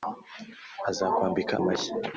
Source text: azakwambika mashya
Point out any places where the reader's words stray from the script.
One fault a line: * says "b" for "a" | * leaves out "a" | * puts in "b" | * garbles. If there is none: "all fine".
all fine